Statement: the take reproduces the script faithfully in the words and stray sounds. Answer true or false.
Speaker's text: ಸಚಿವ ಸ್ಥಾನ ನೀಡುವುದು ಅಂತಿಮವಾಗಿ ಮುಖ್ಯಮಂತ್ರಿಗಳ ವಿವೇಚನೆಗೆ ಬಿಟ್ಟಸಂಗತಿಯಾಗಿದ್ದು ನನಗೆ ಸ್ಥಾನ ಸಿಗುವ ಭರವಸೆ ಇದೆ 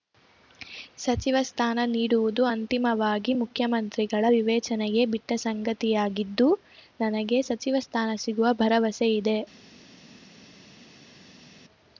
false